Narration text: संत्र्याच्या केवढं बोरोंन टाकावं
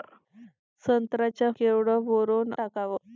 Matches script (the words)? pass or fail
pass